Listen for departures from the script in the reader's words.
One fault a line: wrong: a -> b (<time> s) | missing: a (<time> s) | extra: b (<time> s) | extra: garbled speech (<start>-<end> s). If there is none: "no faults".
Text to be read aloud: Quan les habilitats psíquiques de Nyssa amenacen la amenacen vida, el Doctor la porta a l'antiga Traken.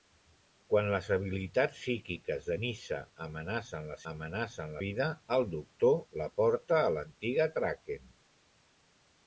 no faults